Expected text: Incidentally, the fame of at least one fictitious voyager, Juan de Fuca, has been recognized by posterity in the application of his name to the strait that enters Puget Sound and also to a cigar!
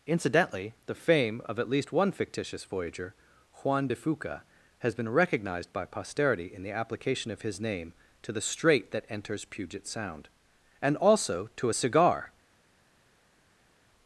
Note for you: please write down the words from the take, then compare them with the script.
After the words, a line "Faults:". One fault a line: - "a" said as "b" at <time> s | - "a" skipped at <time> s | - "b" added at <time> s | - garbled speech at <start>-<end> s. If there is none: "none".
Incidentally, the fame of at least one fictitious voyager, Juan de Fuca, has been recognized by posterity in the application of his name to the strait that enters Puget Sound and also to a cigar!
Faults:
none